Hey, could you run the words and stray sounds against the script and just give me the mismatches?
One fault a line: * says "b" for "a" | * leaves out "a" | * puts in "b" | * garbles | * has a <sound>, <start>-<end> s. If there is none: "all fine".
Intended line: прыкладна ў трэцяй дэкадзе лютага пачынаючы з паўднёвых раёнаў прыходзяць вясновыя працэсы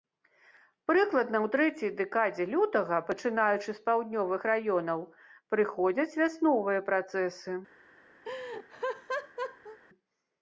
* has a laugh, 8.2-9.8 s